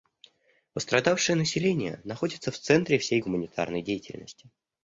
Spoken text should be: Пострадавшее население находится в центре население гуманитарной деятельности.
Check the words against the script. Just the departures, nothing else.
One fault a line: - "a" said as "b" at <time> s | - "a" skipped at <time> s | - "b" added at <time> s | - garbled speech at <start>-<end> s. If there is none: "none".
- "население" said as "всей" at 3.0 s